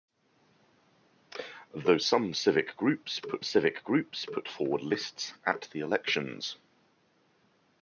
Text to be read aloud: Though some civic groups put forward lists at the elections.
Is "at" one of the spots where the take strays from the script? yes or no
no